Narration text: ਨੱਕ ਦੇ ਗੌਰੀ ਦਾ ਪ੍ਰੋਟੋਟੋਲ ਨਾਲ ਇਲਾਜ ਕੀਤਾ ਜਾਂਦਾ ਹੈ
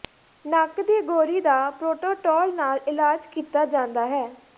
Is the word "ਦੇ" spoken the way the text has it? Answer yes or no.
no